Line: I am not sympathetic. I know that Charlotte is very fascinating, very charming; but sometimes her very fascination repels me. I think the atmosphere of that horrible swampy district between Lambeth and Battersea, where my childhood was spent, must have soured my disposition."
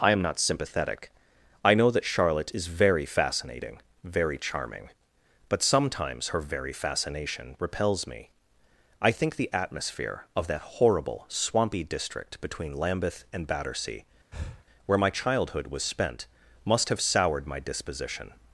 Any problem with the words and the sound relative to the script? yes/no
yes